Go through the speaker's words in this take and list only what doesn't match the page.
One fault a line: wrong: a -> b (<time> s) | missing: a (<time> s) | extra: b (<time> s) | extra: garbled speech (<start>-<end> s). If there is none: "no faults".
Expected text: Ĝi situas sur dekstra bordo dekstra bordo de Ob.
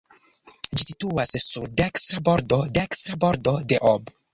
no faults